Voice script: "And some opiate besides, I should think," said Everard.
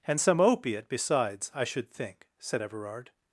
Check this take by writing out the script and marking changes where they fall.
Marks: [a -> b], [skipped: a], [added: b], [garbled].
"And some opiate besides, I should think," said Everard.